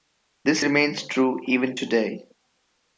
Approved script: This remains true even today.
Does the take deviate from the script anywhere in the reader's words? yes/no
no